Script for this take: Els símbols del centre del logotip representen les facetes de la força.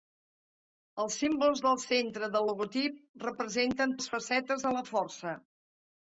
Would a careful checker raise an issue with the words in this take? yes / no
no